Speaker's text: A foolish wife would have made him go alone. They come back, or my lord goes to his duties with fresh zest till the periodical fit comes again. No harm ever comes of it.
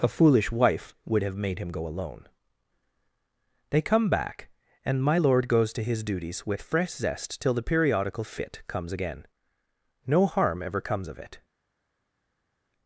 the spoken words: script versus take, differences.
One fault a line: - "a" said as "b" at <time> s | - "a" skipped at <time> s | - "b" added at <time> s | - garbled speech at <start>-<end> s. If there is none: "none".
- "or" said as "and" at 4.8 s